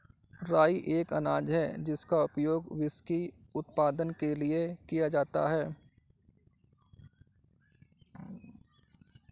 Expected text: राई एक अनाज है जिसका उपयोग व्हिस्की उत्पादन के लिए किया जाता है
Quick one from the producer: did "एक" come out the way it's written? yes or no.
yes